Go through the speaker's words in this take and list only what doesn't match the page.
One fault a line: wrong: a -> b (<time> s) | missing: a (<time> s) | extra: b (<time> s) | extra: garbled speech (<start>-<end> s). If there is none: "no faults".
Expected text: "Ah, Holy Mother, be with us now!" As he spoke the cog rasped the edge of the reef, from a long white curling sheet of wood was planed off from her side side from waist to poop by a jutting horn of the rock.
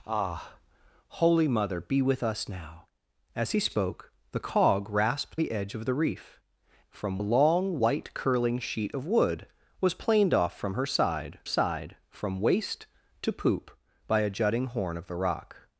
no faults